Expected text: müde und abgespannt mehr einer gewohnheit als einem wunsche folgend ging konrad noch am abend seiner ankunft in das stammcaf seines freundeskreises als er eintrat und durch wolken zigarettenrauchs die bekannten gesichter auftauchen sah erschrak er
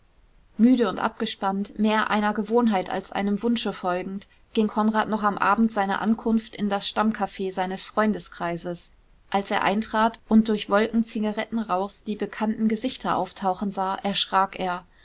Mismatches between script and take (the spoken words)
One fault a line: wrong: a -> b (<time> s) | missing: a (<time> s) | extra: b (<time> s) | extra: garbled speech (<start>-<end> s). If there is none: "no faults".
no faults